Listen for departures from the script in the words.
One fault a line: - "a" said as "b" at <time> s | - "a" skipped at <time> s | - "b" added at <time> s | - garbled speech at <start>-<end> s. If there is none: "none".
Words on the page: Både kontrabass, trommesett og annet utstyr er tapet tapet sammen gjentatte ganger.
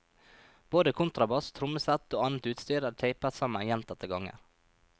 - "tapet" skipped at 3.4 s